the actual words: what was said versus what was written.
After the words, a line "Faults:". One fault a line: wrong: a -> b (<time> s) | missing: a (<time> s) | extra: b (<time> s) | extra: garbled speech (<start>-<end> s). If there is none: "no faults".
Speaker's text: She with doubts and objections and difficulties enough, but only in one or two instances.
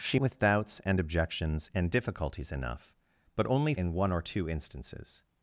She with doubts and objections and difficulties enough, but only in one or two instances.
Faults:
no faults